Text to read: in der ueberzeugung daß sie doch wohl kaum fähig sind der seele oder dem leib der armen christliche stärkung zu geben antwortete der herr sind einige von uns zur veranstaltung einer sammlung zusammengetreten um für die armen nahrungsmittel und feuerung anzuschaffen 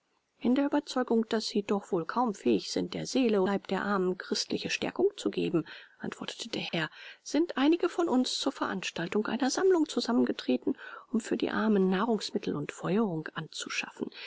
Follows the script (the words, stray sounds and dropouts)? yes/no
no